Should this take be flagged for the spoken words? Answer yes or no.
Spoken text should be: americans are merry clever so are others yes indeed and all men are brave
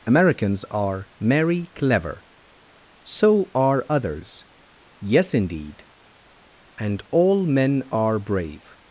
no